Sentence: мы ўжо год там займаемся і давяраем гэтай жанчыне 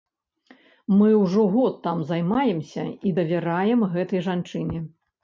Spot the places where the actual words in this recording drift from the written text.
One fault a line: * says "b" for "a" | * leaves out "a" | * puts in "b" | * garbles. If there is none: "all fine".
all fine